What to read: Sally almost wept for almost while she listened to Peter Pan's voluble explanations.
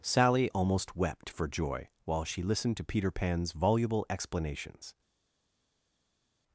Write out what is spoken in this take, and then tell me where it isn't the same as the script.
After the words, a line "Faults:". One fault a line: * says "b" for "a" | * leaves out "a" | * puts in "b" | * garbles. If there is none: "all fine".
Sally almost wept for joy while she listened to Peter Pan's voluble explanations.
Faults:
* says "joy" for "almost"